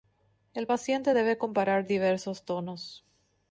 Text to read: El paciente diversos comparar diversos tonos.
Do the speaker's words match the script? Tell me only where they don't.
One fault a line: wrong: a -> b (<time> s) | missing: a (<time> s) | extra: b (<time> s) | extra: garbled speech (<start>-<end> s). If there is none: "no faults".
wrong: diversos -> debe (1.1 s)